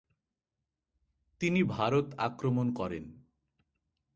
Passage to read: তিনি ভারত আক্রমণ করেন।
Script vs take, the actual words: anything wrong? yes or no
no